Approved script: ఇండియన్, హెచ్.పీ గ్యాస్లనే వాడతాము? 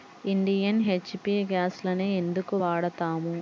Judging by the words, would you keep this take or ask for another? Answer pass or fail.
fail